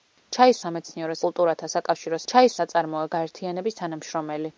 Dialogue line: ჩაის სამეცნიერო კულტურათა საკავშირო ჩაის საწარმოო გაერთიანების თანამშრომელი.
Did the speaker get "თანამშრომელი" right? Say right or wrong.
right